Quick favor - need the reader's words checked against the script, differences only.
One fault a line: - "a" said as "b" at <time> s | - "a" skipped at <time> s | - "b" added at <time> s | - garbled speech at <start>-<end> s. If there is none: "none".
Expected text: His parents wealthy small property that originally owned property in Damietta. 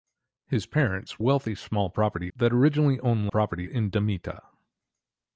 none